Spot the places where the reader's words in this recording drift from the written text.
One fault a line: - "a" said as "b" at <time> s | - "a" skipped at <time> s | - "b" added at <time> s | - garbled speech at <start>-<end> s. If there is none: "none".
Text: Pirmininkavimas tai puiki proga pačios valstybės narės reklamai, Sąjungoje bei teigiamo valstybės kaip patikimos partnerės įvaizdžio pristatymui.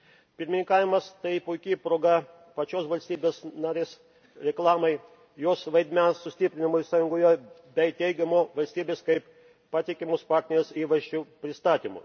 - "jos vaidmens sustiprinimui" added at 5.4 s